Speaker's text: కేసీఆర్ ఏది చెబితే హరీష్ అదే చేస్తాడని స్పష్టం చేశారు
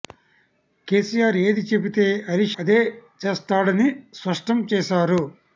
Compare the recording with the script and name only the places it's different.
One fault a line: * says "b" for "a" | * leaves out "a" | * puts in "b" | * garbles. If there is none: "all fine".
all fine